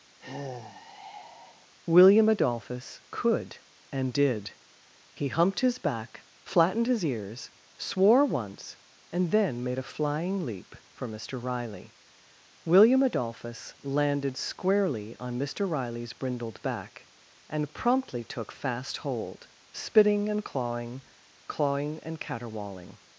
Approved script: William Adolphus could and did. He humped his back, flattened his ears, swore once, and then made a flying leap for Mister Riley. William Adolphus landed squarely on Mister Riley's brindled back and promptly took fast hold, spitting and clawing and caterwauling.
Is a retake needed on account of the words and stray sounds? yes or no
yes